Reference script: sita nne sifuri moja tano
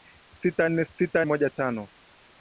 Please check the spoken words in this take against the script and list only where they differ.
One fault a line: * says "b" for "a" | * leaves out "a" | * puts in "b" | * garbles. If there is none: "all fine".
* says "sita" for "sifuri"